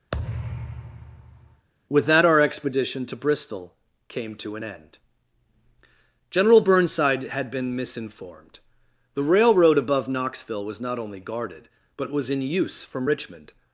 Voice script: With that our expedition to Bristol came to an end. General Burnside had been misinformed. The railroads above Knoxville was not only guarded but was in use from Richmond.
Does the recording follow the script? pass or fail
fail